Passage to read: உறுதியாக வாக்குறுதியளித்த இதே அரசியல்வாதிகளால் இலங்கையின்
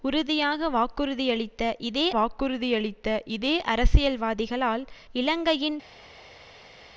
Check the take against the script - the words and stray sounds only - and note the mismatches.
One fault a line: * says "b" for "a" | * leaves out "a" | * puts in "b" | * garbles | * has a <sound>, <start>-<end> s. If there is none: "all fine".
* puts in "வாக்குறுதியளித்த இதே"